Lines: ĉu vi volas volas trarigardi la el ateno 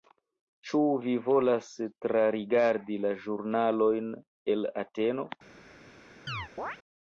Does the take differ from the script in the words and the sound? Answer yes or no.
yes